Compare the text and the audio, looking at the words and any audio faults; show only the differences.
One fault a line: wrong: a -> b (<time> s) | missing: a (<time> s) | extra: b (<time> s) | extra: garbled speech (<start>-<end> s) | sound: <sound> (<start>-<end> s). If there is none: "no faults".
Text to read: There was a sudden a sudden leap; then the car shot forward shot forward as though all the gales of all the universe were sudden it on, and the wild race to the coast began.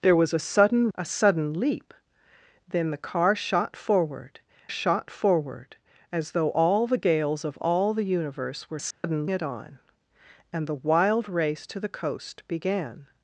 sound: dropout (8.9-9.0 s)